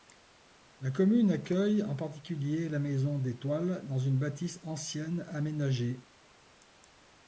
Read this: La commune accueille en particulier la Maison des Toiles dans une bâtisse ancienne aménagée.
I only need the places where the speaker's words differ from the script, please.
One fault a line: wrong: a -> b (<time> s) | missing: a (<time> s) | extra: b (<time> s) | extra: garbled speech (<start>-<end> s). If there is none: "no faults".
no faults